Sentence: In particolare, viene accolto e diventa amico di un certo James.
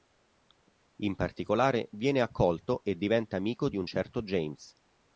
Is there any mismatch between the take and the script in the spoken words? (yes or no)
no